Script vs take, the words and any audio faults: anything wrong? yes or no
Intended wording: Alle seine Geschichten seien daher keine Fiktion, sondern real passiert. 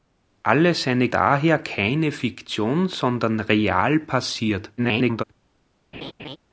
yes